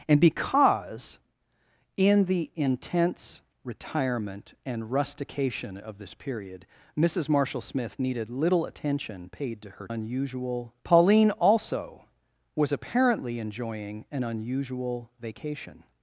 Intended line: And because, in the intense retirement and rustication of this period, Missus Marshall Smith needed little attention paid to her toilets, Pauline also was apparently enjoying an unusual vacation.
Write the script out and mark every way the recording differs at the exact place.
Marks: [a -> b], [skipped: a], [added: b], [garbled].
And because, in the intense retirement and rustication of this period, Missus Marshall Smith needed little attention paid to her [toilets, -> unusual] Pauline also was apparently enjoying an unusual vacation.